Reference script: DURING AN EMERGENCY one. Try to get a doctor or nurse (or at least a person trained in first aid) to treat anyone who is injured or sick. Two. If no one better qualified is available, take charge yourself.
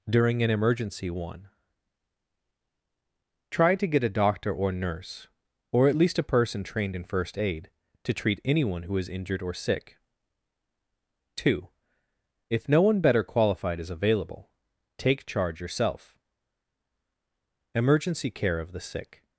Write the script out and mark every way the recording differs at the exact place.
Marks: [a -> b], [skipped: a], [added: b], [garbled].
DURING AN EMERGENCY one. Try to get a doctor or nurse (or at least a person trained in first aid) to treat anyone who is injured or sick. Two. If no one better qualified is available, take charge yourself. [added: EMERGENCY CARE OF THE SICK]